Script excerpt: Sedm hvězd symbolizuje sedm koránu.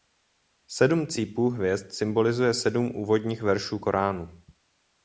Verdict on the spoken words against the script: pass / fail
fail